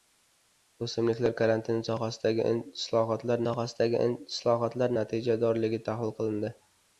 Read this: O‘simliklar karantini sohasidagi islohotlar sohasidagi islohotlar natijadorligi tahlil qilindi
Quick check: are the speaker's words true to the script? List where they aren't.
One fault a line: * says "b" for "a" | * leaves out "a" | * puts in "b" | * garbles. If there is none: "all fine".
all fine